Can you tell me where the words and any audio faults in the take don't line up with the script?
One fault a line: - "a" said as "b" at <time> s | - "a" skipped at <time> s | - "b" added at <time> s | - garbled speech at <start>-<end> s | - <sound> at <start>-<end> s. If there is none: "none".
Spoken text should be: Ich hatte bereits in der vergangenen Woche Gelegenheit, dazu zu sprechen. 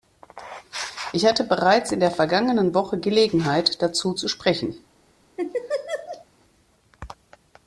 - laugh at 5.4-6.3 s